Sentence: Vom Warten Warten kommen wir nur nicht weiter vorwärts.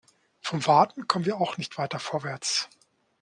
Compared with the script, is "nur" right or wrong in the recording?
wrong